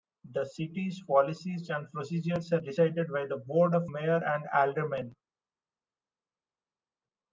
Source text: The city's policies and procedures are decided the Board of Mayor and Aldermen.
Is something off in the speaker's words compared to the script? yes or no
yes